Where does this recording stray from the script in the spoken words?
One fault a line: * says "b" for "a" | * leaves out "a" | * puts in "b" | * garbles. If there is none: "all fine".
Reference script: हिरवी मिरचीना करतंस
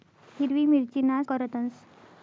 all fine